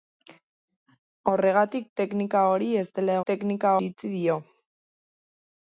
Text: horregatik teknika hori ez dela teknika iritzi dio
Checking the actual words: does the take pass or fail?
pass